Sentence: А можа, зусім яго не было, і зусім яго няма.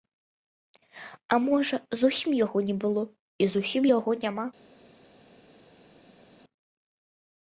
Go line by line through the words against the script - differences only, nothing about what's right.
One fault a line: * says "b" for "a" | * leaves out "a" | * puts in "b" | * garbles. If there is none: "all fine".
all fine